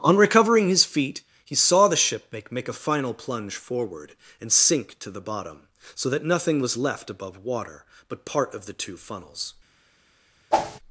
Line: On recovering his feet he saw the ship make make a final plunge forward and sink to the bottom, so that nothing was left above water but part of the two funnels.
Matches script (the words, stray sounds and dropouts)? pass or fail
fail